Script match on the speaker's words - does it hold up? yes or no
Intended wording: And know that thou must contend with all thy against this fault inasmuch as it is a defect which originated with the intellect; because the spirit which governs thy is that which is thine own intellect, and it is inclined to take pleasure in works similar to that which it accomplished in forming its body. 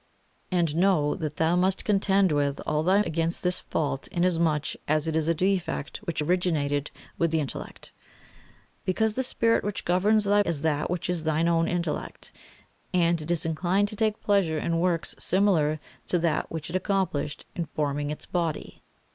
yes